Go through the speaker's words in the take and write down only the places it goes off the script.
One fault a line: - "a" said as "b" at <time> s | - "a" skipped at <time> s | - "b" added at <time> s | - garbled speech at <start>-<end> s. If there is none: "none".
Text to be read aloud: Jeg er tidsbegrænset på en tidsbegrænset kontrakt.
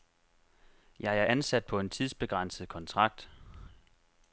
- "tidsbegrænset" said as "ansat" at 1.2 s